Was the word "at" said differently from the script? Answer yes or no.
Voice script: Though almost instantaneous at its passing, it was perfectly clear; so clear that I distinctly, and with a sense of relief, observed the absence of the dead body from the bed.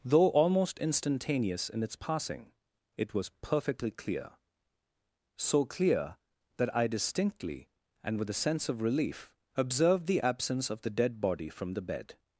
yes